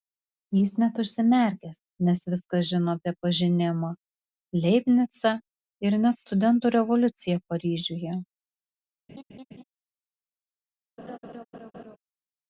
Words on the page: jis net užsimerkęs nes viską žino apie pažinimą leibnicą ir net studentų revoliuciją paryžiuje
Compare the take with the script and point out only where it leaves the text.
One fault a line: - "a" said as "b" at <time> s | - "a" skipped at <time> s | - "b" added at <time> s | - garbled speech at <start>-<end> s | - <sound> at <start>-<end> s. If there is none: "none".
- laugh at 9.1-9.6 s
- laugh at 11.0-12.0 s